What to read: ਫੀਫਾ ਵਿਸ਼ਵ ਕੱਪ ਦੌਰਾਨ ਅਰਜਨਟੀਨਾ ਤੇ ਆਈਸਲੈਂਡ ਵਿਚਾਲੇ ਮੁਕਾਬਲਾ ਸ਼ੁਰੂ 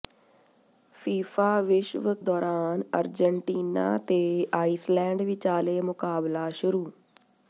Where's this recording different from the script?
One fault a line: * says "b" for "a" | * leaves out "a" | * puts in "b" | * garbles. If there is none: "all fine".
* leaves out "ਕੱਪ"